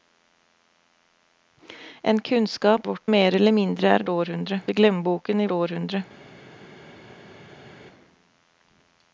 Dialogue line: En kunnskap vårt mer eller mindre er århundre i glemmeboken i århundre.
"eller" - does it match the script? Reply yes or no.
yes